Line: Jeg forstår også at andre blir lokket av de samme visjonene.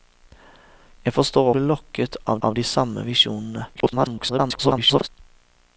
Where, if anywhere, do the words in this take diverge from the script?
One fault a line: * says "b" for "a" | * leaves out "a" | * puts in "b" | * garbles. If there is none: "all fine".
* leaves out "også at andre"
* puts in "av"
* garbles